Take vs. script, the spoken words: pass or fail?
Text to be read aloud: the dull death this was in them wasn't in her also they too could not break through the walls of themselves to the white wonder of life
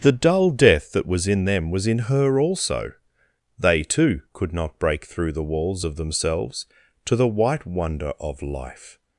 fail